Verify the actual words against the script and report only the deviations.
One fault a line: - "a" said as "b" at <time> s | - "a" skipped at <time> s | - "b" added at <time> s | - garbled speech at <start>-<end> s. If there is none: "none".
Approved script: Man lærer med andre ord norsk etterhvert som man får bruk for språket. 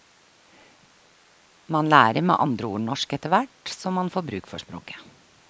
none